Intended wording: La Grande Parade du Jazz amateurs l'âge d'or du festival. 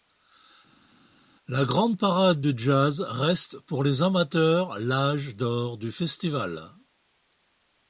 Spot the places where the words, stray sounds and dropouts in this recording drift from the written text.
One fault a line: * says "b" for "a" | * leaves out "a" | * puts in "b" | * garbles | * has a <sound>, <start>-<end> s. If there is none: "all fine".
* puts in "reste pour les"